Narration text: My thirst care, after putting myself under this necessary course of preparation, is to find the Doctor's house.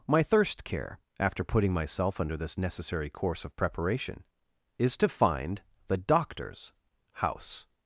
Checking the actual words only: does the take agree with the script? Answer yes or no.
yes